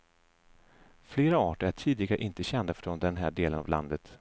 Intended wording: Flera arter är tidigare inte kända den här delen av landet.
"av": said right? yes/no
yes